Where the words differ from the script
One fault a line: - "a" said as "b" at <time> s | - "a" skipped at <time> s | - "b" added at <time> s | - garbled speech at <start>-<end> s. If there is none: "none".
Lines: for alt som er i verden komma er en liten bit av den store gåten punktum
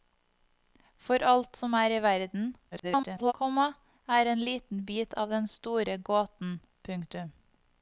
- garbled speech at 2.7-3.3 s